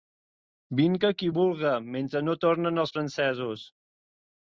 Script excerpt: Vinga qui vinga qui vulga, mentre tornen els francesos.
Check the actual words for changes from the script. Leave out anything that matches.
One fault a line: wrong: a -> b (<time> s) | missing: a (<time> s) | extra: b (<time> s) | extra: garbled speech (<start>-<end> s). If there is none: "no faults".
missing: vinga qui (1.3 s)
extra: no (2.3 s)